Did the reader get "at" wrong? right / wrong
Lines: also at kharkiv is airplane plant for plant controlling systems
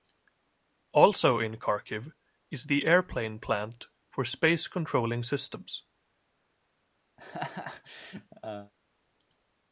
wrong